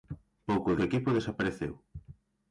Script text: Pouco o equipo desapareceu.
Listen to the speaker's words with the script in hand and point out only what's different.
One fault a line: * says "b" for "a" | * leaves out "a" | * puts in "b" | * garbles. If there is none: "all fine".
all fine